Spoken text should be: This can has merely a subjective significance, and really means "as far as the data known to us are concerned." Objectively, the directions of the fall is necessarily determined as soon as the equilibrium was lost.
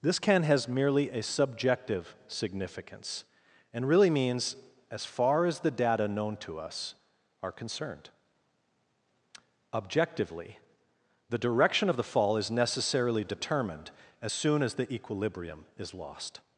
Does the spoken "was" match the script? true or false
false